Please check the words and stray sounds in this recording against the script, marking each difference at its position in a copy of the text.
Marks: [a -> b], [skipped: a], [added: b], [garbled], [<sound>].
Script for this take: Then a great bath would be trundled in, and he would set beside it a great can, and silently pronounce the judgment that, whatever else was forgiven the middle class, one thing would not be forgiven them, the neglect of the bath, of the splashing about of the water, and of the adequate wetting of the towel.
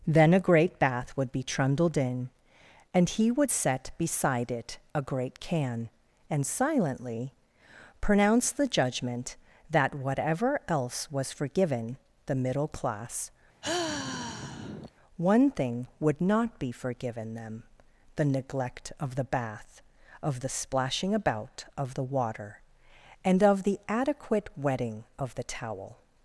Then a great bath would be trundled in, and he would set beside it a great can, and silently pronounce the judgment that, whatever else was forgiven the middle class, [sigh] one thing would not be forgiven them, the neglect of the bath, of the splashing about of the water, and of the adequate wetting of the towel.